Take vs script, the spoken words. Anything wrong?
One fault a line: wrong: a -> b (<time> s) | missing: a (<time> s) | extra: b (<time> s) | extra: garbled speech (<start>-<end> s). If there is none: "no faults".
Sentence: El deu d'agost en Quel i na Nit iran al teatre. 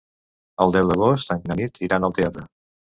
missing: Quel (1.4 s)